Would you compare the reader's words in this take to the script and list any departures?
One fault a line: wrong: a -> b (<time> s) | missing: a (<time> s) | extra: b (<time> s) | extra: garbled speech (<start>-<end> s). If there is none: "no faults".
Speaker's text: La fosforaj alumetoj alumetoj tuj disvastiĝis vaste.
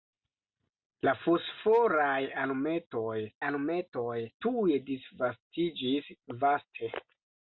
no faults